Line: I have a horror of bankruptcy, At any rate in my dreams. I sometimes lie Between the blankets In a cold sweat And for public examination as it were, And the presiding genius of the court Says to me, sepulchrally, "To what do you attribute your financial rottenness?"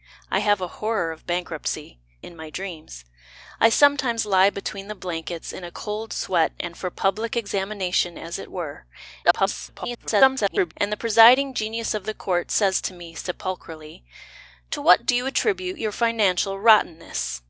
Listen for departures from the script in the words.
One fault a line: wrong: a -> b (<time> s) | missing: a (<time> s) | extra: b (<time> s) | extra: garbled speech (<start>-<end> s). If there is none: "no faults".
missing: At any rate (2.0 s)
extra: garbled speech (9.2-10.7 s)